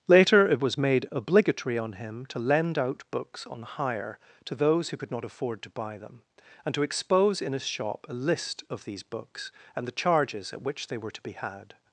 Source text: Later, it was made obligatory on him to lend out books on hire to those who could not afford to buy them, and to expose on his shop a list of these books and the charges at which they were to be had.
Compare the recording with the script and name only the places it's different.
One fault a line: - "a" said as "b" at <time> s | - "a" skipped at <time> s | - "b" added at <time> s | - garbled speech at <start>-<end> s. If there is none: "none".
- "on" said as "in" at 7.4 s